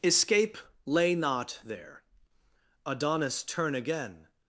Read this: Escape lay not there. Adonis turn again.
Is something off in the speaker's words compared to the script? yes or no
no